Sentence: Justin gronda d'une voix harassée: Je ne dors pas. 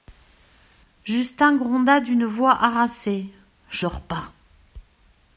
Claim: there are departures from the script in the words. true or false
true